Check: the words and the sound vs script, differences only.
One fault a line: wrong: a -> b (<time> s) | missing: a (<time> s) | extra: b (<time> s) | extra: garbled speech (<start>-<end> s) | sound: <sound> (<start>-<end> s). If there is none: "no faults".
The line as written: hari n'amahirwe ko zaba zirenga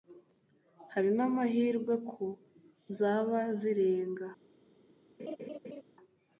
sound: laugh (5.2-5.8 s)